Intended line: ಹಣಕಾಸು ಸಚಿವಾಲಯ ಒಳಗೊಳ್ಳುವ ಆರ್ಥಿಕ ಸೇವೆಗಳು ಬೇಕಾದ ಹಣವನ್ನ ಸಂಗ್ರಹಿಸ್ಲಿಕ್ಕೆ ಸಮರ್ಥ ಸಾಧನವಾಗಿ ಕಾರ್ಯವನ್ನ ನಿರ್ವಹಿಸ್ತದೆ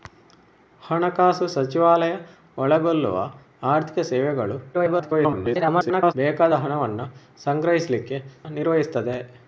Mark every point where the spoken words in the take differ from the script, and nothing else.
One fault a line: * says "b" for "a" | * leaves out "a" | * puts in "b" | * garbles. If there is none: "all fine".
* garbles
* leaves out "ಸಮರ್ಥ ಸಾಧನವಾಗಿ ಕಾರ್ಯವನ್ನ"